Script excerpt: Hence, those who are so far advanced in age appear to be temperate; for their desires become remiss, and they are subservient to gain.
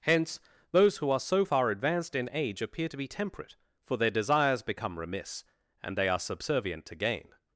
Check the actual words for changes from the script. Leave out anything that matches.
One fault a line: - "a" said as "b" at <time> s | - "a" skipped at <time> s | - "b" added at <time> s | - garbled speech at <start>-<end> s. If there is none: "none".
none